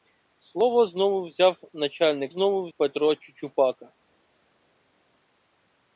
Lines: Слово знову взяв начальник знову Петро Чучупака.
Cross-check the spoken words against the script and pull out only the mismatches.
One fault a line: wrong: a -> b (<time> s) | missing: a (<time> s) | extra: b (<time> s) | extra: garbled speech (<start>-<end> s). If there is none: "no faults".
no faults